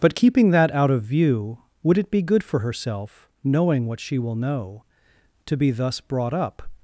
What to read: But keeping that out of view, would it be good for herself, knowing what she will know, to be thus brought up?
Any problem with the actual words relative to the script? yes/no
no